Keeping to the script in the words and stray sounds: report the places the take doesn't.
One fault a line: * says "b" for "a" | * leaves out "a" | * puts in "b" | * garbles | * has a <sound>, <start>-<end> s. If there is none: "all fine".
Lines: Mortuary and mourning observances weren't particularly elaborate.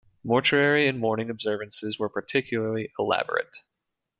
* says "were" for "weren't"